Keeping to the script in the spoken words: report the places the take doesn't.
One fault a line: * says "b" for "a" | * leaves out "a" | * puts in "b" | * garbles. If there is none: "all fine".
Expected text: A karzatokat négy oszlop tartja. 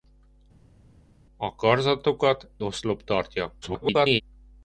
* leaves out "négy"
* garbles